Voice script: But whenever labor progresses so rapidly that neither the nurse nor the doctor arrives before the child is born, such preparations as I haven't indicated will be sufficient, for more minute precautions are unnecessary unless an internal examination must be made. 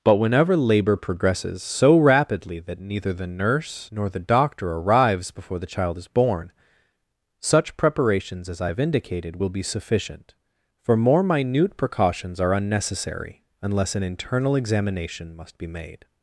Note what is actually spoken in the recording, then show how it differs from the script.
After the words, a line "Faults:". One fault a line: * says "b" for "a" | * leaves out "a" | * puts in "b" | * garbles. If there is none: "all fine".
But whenever labor progresses so rapidly that neither the nurse nor the doctor arrives before the child is born, such preparations as I have indicated will be sufficient, for more minute precautions are unnecessary unless an internal examination must be made.
Faults:
* says "have" for "haven't"